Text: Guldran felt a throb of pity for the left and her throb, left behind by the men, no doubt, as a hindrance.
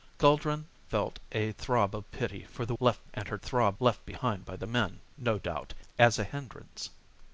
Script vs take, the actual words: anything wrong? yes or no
no